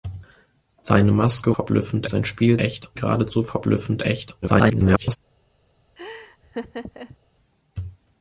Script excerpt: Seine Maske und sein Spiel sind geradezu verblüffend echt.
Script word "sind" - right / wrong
wrong